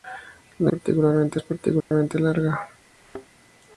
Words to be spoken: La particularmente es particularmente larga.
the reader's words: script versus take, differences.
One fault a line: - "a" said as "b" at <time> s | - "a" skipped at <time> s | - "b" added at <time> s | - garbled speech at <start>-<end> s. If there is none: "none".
none